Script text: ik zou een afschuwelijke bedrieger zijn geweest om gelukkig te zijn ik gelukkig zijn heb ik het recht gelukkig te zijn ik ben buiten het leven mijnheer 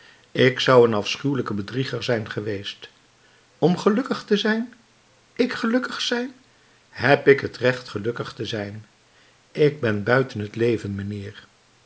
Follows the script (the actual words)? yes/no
yes